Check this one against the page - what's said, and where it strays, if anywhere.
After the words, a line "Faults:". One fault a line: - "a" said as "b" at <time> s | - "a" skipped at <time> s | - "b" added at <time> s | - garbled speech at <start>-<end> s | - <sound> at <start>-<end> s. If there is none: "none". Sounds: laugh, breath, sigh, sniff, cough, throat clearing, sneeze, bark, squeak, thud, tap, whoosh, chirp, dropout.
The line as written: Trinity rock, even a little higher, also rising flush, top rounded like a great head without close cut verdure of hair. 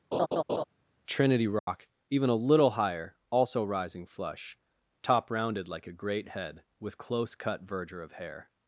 Trinity rock, even a little higher, also rising flush, top rounded like a great head with close cut verdure of hair.
Faults:
- laugh at 0.1-0.6 s
- dropout at 1.6-1.7 s
- "without" said as "with" at 6.8 s